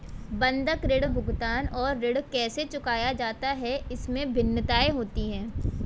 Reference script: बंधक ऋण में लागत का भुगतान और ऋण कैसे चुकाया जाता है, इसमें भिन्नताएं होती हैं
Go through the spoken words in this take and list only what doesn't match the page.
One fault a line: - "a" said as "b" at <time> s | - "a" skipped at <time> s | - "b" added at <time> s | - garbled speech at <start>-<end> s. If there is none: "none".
- "में लागत का" skipped at 1.1 s